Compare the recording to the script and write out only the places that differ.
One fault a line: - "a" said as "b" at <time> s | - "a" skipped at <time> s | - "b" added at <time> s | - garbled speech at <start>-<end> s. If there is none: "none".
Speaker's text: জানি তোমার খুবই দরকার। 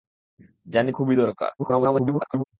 - "তোমার" skipped at 0.9 s
- garbled speech at 1.6-2.4 s